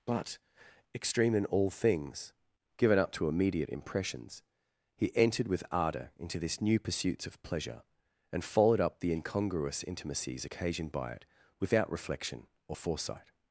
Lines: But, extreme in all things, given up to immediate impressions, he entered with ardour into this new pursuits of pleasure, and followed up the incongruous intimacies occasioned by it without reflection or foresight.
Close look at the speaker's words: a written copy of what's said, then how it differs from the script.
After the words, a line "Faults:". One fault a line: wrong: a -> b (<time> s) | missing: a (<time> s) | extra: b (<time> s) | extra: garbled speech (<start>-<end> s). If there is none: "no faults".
But, extreme in all things, given up to immediate impressions, he entered with ardour into this new pursuits of pleasure, and followed up the incongruous intimacies occasioned by it without reflection or foresight.
Faults:
no faults